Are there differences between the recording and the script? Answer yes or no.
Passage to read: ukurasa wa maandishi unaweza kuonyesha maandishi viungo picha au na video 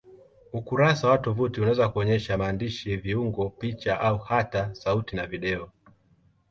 yes